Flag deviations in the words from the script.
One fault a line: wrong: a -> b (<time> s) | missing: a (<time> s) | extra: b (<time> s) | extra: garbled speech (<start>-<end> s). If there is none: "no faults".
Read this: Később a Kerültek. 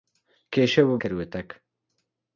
no faults